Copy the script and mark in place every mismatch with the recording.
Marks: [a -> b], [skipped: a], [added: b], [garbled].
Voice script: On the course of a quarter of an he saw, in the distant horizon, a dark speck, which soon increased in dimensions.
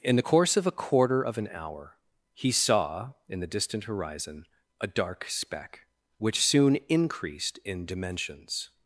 [On -> In] the course of a quarter of an [added: hour] he saw, in the distant horizon, a dark speck, which soon increased in dimensions.